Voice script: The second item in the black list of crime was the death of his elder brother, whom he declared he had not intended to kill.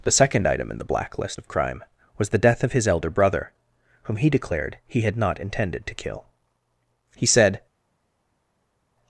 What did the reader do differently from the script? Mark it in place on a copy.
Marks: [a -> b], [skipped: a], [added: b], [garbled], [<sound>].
The second item in the black list of crime was the death of his elder brother, whom he declared he had not intended to kill. [added: He said]